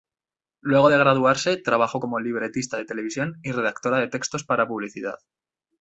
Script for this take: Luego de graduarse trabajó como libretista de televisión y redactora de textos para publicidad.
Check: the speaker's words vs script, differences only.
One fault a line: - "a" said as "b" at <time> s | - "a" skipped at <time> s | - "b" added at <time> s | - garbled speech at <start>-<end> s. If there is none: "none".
none